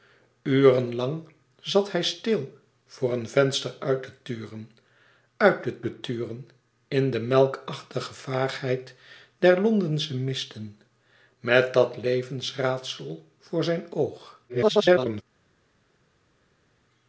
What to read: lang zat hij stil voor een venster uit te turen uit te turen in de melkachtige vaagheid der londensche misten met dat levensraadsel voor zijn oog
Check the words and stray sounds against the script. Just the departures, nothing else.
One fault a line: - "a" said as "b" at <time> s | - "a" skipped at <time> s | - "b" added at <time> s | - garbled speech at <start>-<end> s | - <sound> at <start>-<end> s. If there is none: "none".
- "te" added at 5.8 s
- garbled speech at 14.5-15.2 s